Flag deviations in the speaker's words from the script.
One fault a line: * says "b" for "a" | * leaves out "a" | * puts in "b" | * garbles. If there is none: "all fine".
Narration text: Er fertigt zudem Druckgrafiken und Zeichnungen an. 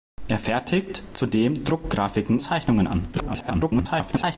* leaves out "und"
* garbles